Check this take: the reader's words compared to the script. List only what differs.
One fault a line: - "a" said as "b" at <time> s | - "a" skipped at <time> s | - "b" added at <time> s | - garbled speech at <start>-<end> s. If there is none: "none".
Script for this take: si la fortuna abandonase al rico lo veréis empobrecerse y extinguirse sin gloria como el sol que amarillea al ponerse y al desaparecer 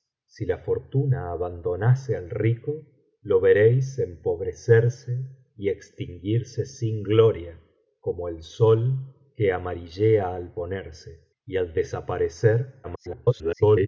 - garbled speech at 12.8-13.9 s